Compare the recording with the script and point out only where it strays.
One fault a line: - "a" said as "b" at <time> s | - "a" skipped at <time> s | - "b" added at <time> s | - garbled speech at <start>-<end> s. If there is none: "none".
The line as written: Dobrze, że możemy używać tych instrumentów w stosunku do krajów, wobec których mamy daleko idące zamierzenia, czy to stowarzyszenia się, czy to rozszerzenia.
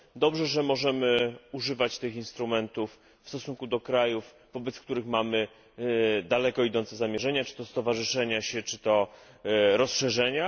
none